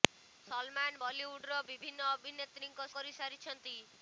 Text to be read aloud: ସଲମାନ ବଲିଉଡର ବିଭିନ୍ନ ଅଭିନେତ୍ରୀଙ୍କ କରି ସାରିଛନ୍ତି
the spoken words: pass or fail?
pass